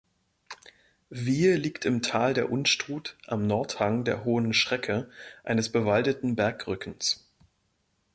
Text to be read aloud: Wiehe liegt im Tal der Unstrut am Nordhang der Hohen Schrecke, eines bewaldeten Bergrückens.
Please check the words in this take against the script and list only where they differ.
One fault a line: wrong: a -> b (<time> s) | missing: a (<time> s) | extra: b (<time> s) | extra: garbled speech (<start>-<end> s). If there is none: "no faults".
no faults